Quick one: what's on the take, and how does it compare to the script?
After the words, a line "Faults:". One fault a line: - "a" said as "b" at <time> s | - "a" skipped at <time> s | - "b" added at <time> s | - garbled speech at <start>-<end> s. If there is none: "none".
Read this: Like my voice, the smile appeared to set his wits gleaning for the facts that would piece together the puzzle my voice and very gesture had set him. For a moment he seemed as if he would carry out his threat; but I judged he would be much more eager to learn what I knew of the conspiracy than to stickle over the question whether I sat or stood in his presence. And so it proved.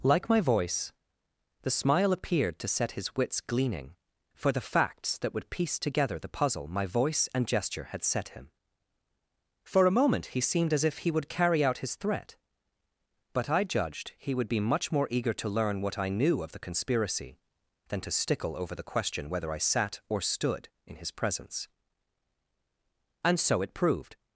Like my voice, the smile appeared to set his wits gleaning for the facts that would piece together the puzzle my voice and gesture had set him. For a moment he seemed as if he would carry out his threat; but I judged he would be much more eager to learn what I knew of the conspiracy than to stickle over the question whether I sat or stood in his presence. And so it proved.
Faults:
- "very" skipped at 7.5 s